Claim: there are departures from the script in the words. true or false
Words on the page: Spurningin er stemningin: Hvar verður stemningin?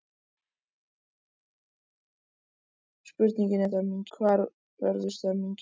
false